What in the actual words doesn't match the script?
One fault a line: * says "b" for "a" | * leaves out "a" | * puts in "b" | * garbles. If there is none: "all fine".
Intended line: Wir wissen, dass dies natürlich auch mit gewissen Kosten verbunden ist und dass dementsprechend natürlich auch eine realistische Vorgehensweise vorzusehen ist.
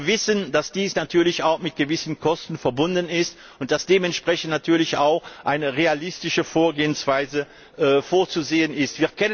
all fine